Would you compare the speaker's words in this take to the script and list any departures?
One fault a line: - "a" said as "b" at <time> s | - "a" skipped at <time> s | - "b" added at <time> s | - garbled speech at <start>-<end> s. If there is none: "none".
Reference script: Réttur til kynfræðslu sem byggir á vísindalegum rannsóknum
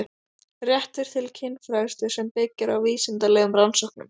none